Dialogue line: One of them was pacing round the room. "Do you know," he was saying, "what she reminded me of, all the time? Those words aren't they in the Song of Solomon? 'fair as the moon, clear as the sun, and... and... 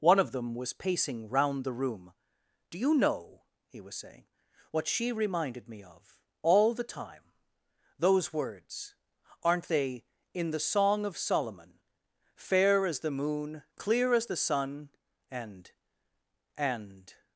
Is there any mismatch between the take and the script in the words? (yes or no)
no